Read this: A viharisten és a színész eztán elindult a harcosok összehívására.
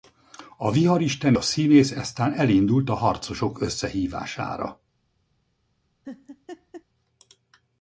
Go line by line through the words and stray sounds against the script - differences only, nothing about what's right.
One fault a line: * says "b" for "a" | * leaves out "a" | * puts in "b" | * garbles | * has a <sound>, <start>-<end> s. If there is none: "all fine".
* leaves out "és"
* has a laugh, 6.0-6.8 s